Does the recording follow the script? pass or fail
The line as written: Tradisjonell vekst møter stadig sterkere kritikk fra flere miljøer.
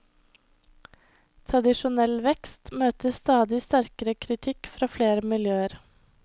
pass